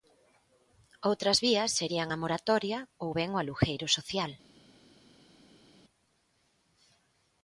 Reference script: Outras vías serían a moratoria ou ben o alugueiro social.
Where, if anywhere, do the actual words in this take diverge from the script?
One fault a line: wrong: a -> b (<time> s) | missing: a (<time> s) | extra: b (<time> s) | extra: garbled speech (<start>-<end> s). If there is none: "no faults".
no faults